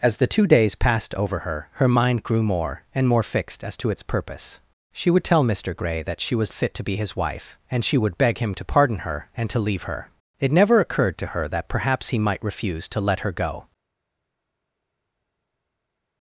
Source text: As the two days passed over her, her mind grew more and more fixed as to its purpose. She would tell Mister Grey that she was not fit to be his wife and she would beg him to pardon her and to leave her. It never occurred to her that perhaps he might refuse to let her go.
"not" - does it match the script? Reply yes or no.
no